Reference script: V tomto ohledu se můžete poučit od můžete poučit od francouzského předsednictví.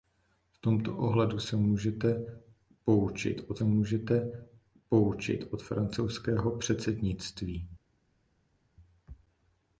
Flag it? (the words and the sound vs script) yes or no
no